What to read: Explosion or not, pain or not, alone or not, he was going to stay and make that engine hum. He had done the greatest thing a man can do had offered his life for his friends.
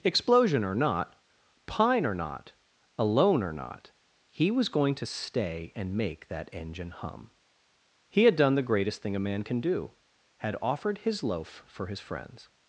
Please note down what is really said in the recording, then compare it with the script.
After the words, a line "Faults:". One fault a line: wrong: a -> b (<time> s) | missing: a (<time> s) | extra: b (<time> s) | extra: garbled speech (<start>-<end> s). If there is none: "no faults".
Explosion or not, pine or not, alone or not, he was going to stay and make that engine hum. He had done the greatest thing a man can do had offered his loaf for his friends.
Faults:
wrong: pain -> pine (1.6 s)
wrong: life -> loaf (11.2 s)